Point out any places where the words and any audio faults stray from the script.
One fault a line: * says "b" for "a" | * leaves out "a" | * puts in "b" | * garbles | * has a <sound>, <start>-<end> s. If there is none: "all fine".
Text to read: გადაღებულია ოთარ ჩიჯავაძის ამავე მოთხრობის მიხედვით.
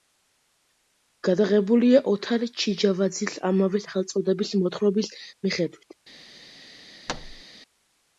* puts in "სახელწოდების"
* has a thud, 7.1-7.4 s